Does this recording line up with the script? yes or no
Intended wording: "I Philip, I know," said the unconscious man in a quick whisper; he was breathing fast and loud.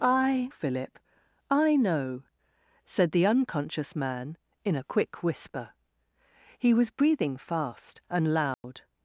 yes